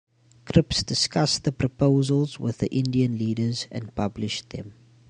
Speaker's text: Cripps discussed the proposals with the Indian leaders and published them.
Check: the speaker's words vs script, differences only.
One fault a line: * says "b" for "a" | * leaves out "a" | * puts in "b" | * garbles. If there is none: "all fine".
all fine